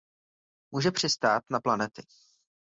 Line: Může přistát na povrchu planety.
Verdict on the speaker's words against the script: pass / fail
fail